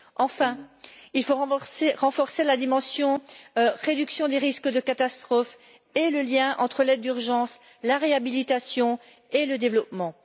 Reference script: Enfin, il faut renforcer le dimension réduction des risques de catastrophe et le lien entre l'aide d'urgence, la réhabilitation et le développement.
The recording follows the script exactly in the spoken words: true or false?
false